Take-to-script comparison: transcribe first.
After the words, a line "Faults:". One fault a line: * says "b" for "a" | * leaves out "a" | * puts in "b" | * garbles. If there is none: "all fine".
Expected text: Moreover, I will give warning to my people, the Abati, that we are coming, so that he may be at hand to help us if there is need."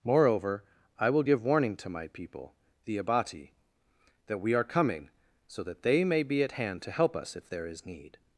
Moreover, I will give warning to my people, the Abati, that we are coming, so that they may be at hand to help us if there is need."
Faults:
* says "they" for "he"